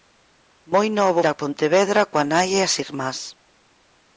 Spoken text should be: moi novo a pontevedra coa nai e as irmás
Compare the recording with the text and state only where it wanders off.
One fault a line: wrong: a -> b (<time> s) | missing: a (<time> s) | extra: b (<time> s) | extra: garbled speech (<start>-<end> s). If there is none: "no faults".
no faults